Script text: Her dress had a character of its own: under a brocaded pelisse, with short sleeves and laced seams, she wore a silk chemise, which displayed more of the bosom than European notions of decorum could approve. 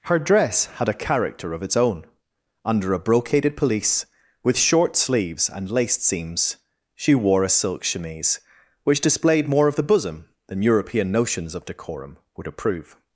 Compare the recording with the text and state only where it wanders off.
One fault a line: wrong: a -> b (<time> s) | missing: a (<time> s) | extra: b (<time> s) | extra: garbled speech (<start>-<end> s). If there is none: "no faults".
wrong: could -> would (12.3 s)